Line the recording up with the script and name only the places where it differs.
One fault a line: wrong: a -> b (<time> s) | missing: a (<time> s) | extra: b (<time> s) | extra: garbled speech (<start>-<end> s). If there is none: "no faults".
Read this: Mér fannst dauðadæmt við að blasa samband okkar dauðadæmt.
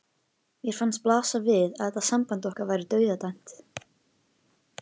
wrong: dauðadæmt -> blasa (1.1 s)
wrong: blasa -> þetta (1.9 s)
extra: væri (2.7 s)